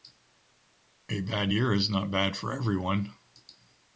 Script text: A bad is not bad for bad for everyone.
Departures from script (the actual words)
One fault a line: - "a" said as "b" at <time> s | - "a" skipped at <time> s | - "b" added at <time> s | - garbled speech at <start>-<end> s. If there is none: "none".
- "year" added at 1.5 s
- "bad for" skipped at 2.5 s